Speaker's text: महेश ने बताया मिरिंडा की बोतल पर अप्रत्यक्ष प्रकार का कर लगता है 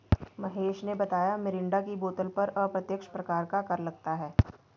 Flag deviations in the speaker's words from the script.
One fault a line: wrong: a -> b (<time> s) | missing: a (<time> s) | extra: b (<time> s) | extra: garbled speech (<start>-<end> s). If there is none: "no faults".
no faults